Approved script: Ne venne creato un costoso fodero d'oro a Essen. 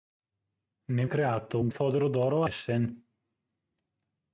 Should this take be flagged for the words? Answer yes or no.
yes